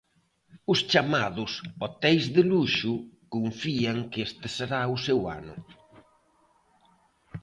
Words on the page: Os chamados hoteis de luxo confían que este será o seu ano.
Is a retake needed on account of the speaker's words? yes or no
no